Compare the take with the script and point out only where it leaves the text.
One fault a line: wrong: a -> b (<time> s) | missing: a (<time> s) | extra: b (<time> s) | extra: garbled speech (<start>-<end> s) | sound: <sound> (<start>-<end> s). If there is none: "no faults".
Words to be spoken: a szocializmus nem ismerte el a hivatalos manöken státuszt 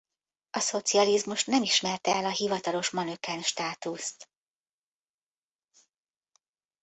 no faults